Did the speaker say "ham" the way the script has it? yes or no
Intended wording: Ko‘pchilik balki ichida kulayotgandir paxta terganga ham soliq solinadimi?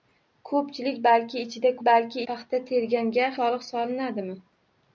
no